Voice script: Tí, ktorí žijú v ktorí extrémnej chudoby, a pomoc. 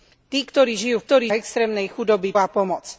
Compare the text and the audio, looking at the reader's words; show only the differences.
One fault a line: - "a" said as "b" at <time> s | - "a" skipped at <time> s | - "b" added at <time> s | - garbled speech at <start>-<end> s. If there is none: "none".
none